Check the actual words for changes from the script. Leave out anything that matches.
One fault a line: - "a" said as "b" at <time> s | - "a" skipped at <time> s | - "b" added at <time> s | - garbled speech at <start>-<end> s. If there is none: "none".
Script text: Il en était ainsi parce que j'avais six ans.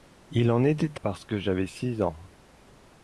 - "ainsi" skipped at 1.0 s